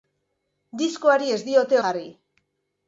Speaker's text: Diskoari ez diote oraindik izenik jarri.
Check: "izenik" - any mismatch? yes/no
yes